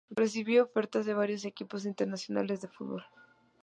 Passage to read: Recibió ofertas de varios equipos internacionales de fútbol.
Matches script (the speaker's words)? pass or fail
pass